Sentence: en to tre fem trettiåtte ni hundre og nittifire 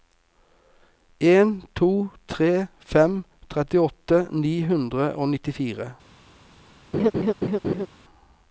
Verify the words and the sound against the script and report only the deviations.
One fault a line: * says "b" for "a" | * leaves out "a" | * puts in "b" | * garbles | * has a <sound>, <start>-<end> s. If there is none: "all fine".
* has a laugh, 6.9-7.9 s